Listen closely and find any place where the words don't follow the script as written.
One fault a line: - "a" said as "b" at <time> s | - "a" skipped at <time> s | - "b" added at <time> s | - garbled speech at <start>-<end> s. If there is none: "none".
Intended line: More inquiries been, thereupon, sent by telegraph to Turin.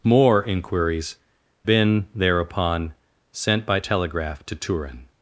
none